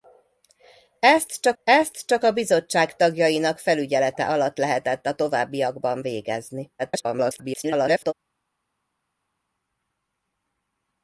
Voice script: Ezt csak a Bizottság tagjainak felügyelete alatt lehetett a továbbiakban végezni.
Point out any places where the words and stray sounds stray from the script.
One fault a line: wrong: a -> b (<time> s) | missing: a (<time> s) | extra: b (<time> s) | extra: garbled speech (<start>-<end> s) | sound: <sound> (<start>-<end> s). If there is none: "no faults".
extra: ezt csak (1.6 s)
extra: garbled speech (6.8-8.1 s)